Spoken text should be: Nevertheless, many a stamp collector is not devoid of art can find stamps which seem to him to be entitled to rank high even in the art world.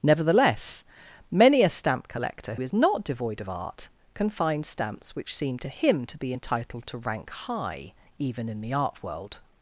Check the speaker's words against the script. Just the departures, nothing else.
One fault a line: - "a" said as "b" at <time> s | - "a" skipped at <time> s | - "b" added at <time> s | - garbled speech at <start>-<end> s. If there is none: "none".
none